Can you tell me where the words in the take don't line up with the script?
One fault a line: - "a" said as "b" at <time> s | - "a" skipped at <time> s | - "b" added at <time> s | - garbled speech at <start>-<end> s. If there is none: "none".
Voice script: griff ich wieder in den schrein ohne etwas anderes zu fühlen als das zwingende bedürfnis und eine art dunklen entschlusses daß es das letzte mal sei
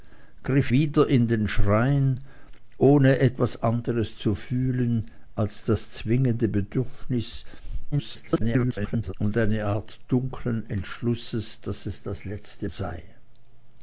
- "ich" skipped at 0.7 s
- garbled speech at 7.9-9.1 s
- "mal" skipped at 12.7 s